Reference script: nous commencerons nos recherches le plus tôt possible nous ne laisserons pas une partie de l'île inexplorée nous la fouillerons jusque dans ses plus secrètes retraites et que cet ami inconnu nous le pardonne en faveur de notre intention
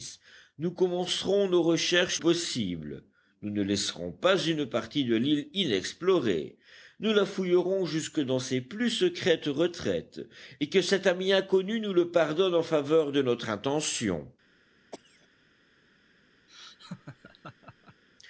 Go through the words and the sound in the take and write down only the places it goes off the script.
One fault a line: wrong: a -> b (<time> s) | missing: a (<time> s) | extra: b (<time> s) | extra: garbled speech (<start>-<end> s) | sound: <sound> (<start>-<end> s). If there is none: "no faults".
missing: le plus tôt (2.2 s)
sound: cough (14.9-15.3 s)
sound: laugh (16.5-18.0 s)